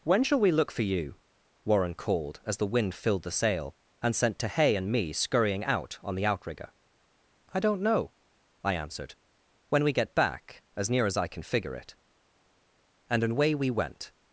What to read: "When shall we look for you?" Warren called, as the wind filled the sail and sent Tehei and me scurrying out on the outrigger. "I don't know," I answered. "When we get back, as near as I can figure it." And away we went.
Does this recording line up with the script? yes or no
yes